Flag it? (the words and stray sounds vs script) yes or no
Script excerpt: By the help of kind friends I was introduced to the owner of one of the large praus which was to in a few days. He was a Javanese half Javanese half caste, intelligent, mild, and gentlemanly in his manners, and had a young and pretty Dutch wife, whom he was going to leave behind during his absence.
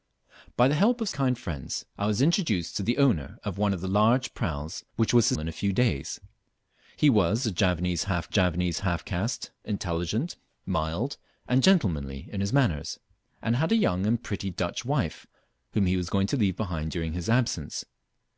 no